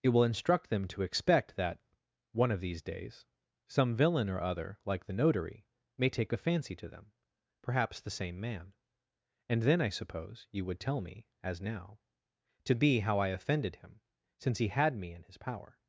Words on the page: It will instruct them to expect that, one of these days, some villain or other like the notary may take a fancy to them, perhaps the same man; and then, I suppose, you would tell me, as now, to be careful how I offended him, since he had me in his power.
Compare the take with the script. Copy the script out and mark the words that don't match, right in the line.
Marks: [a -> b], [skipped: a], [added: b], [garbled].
It will instruct them to expect that, one of these days, some villain or other like the notary may take a fancy to them, perhaps the same man; and then, I suppose, you would tell me, as now, to be [skipped: careful] how I offended him, since he had me in his power.